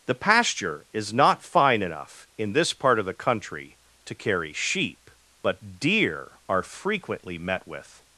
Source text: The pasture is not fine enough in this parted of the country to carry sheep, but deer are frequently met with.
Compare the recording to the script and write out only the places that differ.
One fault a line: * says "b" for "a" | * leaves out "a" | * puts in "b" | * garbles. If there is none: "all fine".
* says "part" for "parted"